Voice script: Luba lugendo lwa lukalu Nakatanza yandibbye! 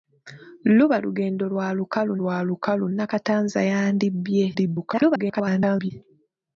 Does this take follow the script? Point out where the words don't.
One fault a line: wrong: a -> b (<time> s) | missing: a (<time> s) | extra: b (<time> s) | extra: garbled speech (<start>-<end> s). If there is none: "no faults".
extra: lwa lukalu (2.2 s)
extra: garbled speech (4.5-5.9 s)